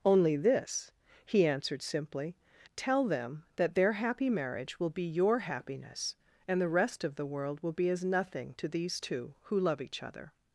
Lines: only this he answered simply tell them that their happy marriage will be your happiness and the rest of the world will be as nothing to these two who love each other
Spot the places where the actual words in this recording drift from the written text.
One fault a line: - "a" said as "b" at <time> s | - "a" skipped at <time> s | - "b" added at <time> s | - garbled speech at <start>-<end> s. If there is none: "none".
none